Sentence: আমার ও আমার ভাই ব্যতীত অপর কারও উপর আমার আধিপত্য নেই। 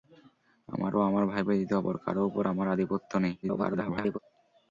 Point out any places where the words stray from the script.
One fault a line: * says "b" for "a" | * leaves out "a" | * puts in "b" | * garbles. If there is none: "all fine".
* garbles